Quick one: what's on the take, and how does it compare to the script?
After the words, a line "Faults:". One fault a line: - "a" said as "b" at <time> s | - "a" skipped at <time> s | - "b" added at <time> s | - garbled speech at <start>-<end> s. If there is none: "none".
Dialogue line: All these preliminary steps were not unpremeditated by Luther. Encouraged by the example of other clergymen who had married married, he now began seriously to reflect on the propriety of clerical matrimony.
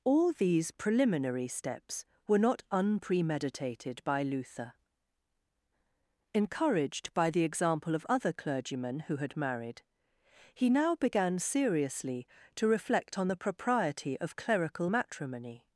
All these preliminary steps were not unpremeditated by Luther. Encouraged by the example of other clergymen who had married, he now began seriously to reflect on the propriety of clerical matrimony.
Faults:
- "married" skipped at 9.8 s